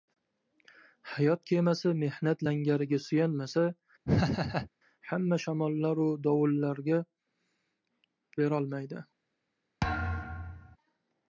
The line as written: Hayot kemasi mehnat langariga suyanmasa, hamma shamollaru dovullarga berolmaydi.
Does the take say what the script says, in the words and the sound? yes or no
no